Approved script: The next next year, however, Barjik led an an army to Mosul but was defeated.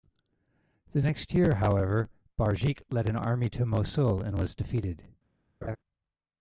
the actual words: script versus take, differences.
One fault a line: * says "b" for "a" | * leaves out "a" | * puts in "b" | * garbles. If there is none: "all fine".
* leaves out "next"
* leaves out "an"
* says "and" for "but"